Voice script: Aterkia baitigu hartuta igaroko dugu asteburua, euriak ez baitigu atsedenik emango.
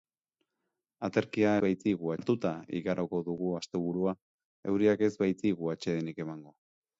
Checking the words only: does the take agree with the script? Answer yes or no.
yes